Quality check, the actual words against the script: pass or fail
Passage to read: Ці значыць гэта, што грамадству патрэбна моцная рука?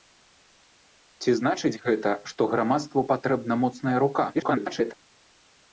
fail